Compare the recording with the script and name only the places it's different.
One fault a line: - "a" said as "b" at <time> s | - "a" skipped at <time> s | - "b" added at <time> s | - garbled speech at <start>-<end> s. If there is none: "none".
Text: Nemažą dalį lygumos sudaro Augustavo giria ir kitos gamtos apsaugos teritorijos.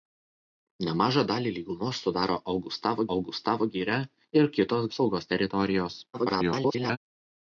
- "Augustavo" added at 3.2 s
- "gamtos" skipped at 4.9 s
- garbled speech at 6.1-7.0 s